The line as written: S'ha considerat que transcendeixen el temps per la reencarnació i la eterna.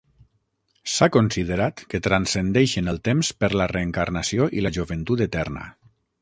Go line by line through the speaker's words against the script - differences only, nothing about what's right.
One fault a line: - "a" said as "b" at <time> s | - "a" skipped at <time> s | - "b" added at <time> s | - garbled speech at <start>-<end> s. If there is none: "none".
- "joventut" added at 4.8 s